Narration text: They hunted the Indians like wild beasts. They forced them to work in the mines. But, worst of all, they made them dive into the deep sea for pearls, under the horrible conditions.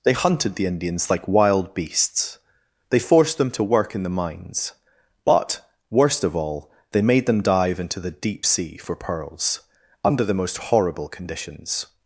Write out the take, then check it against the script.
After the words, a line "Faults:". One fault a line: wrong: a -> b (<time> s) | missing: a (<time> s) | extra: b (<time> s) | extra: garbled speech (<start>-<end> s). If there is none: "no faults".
They hunted the Indians like wild beasts. They forced them to work in the mines. But, worst of all, they made them dive into the deep sea for pearls, under the most horrible conditions.
Faults:
extra: most (10.3 s)